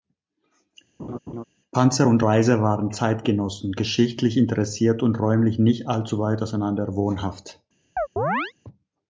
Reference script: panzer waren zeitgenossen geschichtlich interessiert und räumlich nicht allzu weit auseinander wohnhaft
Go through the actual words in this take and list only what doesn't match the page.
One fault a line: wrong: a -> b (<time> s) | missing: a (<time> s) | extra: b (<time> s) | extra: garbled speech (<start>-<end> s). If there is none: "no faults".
extra: und reiser (2.1 s)